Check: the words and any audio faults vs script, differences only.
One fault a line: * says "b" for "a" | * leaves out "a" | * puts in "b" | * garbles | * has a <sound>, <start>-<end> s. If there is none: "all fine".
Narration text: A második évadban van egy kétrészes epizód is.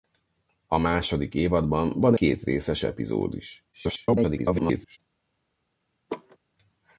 * leaves out "egy"
* garbles
* has a laugh, 6.1-6.4 s